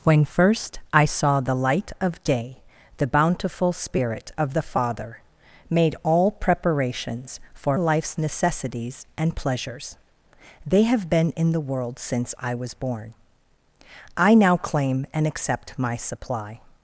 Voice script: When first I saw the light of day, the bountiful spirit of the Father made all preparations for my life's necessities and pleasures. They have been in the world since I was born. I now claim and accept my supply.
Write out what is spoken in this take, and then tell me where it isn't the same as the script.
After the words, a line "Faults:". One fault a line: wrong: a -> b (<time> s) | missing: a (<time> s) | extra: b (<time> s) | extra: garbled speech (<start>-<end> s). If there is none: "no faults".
When first I saw the light of day, the bountiful spirit of the Father made all preparations for life's necessities and pleasures. They have been in the world since I was born. I now claim and accept my supply.
Faults:
missing: my (7.8 s)